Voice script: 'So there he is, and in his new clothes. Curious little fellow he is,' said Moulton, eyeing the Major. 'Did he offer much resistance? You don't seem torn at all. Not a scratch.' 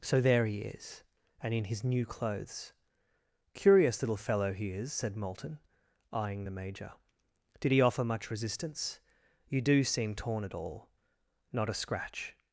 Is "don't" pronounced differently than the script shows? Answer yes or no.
yes